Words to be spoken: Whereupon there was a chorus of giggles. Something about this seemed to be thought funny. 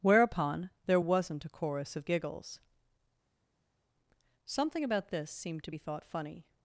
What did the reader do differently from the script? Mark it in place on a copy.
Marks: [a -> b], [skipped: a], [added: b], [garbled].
Whereupon there [was -> wasn't] a chorus of giggles. Something about this seemed to be thought funny.